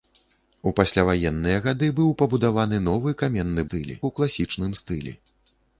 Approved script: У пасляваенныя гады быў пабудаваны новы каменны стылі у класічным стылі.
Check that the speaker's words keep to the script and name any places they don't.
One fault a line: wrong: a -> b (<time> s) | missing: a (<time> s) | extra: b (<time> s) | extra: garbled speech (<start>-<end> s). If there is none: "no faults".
no faults